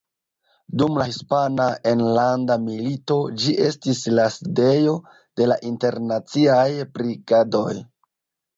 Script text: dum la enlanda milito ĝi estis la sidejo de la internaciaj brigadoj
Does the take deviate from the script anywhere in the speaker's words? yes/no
yes